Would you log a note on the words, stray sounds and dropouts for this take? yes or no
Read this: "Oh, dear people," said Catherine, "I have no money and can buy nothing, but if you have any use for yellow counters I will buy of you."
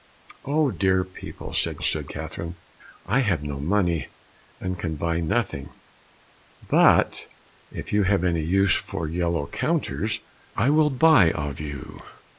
yes